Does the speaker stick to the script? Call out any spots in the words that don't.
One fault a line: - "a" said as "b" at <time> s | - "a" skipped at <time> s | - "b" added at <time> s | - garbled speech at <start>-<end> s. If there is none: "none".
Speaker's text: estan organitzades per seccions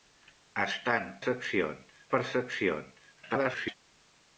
- "organitzades" said as "seccions" at 1.2 s
- garbled speech at 3.2-3.8 s